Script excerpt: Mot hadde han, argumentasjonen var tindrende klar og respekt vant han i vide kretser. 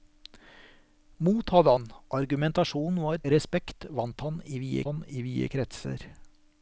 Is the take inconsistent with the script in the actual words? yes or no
yes